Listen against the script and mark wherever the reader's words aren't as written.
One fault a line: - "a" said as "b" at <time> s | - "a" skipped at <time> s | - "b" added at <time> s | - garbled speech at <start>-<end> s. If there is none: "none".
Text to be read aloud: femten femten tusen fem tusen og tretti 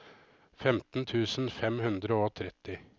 - "femten" skipped at 1.1 s
- "tusen" said as "hundre" at 1.9 s